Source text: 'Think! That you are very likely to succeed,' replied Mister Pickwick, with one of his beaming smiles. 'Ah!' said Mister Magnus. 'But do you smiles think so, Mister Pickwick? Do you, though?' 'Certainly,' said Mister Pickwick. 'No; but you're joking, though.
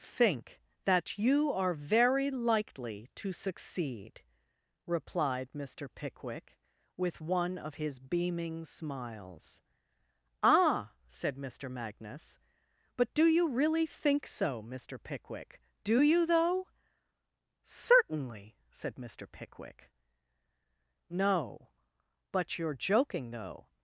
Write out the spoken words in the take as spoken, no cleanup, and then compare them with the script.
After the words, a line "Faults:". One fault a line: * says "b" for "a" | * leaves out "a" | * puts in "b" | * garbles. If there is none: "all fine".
'Think! That you are very likely to succeed,' replied Mister Pickwick, with one of his beaming smiles. 'Ah!' said Mister Magnus. 'But do you really think so, Mister Pickwick? Do you, though?' 'Certainly,' said Mister Pickwick. 'No; but you're joking, though.
Faults:
* says "really" for "smiles"